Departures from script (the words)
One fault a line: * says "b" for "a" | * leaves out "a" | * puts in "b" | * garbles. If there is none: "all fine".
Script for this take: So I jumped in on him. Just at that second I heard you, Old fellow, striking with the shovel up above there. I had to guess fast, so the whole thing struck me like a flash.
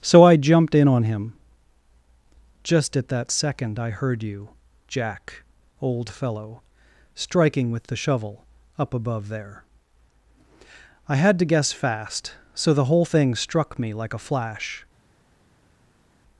* puts in "Jack"